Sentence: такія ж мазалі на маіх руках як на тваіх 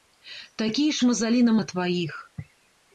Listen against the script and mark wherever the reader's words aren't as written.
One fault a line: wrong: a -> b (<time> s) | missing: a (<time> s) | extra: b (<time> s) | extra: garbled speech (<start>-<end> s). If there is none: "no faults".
missing: маіх руках як (1.5 s)